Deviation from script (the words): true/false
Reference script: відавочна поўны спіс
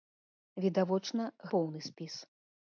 false